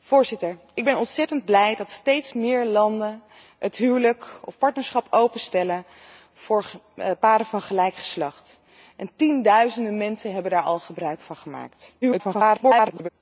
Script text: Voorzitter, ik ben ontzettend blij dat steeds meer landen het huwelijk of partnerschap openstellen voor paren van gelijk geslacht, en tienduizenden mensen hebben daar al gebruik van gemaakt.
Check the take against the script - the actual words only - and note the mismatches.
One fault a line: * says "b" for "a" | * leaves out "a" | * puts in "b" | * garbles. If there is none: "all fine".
* garbles